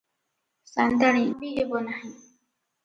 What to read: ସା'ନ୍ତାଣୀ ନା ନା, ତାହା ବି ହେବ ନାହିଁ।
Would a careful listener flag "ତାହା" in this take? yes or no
yes